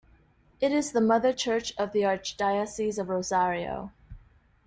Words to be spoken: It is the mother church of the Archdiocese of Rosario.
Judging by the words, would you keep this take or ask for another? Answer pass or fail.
pass